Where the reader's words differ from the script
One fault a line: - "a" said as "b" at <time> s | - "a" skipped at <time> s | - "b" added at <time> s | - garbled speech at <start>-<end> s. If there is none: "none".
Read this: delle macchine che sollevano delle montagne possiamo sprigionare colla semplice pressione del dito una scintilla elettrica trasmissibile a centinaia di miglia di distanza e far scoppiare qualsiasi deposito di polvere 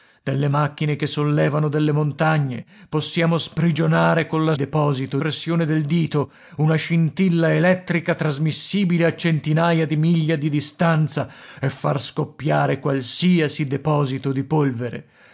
- "semplice" said as "deposito" at 4.5 s